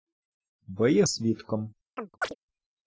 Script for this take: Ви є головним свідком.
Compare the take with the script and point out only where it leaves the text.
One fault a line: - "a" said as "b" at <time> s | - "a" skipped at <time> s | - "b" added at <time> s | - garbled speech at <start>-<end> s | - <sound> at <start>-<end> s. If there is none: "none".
- "головним" skipped at 1.0 s
- chirp at 2.0-2.3 s